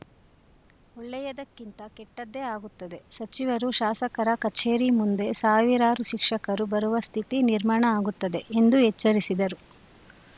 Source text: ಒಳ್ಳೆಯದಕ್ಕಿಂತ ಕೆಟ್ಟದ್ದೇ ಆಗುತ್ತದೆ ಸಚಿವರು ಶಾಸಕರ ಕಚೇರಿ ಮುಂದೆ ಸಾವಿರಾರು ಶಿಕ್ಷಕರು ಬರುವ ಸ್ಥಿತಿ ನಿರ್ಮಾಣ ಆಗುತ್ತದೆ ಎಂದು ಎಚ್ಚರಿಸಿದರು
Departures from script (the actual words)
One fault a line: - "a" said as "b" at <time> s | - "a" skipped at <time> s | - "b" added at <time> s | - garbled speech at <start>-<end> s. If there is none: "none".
none